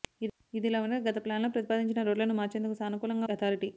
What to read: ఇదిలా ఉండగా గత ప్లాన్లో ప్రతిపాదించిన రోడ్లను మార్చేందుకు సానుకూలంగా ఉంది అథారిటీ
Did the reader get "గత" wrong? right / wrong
right